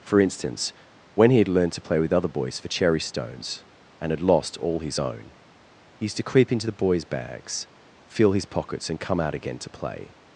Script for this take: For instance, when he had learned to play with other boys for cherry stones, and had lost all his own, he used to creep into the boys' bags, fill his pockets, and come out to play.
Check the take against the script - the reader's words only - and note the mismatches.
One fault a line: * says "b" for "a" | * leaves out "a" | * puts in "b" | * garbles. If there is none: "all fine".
* puts in "again"